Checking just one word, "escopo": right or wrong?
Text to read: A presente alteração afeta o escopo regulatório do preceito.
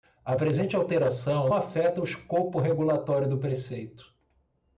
right